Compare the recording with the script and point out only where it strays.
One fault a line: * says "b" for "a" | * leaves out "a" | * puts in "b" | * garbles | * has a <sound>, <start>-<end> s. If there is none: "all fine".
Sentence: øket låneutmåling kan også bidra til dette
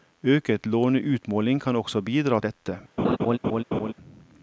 * leaves out "til"
* has a laugh, 3.0-3.9 s